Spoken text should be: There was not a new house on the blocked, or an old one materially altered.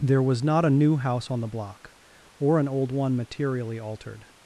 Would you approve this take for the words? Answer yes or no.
no